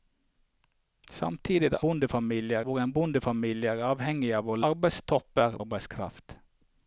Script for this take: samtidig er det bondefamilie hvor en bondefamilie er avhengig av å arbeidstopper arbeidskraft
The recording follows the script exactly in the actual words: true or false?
true